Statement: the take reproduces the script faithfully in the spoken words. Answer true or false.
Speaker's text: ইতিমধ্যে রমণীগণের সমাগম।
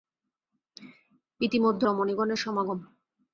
true